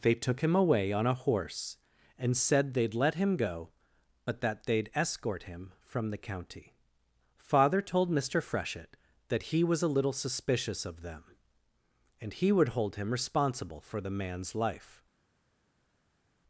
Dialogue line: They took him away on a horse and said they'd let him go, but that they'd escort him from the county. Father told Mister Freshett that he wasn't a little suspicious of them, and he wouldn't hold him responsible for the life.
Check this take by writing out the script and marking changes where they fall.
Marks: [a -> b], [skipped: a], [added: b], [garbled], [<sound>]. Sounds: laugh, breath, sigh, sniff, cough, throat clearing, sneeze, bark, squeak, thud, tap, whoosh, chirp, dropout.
They took him away on a horse and said they'd let him go, but that they'd escort him from the county. Father told Mister Freshett that he [wasn't -> was] a little suspicious of them, and he [wouldn't -> would] hold him responsible for the [added: man's] life.